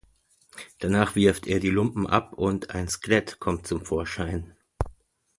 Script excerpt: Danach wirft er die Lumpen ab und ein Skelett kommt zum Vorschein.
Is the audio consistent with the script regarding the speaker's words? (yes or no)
yes